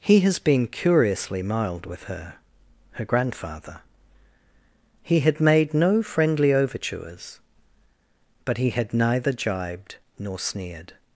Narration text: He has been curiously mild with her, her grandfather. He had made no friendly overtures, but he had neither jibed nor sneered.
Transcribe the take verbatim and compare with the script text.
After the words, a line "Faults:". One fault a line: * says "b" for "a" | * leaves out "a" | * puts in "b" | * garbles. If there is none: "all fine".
He has been curiously mild with her, her grandfather. He had made no friendly overtures, but he had neither jibed nor sneered.
Faults:
all fine